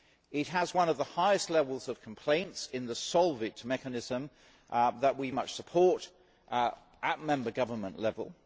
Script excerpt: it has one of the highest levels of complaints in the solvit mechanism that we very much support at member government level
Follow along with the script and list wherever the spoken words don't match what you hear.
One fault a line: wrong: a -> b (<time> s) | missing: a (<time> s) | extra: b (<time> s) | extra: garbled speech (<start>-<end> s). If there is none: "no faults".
missing: very (5.3 s)